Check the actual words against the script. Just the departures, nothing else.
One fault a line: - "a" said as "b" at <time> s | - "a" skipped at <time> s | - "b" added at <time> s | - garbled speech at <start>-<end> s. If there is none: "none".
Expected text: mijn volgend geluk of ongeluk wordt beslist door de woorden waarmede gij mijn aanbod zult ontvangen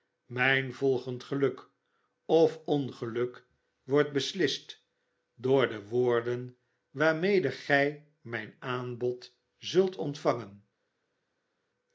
none